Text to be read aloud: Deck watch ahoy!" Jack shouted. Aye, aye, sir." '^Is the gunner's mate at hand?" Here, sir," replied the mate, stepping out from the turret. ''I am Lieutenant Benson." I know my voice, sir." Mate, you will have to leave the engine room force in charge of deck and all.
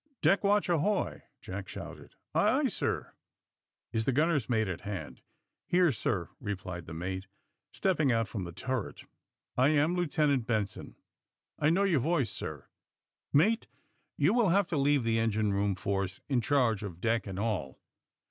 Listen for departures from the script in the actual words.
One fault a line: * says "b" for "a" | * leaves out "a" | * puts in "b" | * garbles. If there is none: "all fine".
* says "your" for "my"